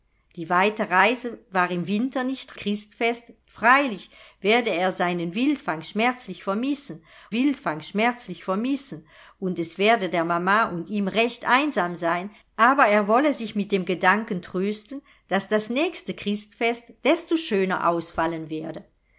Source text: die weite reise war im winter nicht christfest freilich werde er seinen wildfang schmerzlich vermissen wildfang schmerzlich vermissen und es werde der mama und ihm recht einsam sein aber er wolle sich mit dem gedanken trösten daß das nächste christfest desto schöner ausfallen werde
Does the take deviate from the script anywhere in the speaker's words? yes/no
no